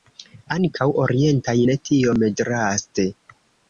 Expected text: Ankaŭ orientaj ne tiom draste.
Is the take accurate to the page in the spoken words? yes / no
yes